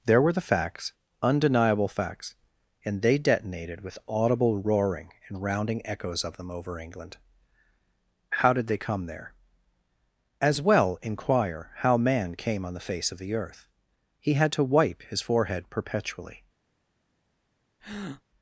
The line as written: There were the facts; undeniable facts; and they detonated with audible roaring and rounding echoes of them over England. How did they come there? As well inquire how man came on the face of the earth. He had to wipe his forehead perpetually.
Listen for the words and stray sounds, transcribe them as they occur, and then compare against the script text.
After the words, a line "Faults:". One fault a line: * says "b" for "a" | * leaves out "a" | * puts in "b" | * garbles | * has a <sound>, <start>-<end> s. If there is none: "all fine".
There were the facts; undeniable facts; and they detonated with audible roaring and rounding echoes of them over England. How did they come there? As well inquire how man came on the face of the earth. He had to wipe his forehead perpetually.
Faults:
* has a breath, 17.8-18.2 s